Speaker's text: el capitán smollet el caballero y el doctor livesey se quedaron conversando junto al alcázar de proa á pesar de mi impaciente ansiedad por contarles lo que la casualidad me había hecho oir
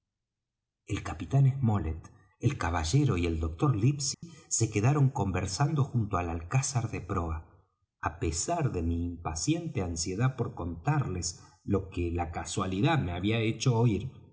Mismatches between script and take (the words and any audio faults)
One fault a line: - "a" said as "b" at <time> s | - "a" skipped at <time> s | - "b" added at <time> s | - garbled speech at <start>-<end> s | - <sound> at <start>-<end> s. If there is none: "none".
- dropout at 4.1-4.2 s